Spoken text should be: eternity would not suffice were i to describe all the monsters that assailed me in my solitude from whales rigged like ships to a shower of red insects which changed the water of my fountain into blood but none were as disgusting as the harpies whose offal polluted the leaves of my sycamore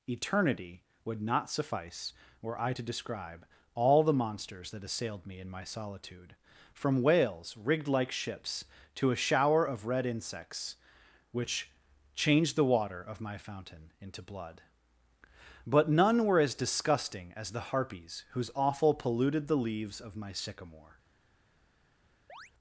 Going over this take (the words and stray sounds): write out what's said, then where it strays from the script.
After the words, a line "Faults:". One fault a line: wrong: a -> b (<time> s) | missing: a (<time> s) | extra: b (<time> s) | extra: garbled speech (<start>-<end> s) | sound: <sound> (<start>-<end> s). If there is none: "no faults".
eternity would not suffice were i to describe all the monsters that assailed me in my solitude from whales rigged like ships to a shower of red insects which changed the water of my fountain into blood but none were as disgusting as the harpies whose offal polluted the leaves of my sycamore
Faults:
sound: chirp (22.3-22.5 s)